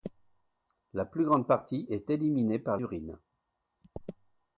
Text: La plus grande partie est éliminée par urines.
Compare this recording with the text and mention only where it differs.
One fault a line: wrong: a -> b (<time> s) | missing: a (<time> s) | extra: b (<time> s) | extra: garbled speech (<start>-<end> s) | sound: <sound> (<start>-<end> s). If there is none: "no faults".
no faults